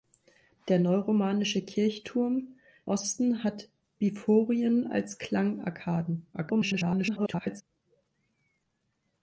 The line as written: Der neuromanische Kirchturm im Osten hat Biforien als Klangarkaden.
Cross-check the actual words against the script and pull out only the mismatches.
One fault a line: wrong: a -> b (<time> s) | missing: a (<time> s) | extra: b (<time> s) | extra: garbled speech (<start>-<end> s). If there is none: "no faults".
missing: im (2.5 s)
extra: garbled speech (6.3-7.6 s)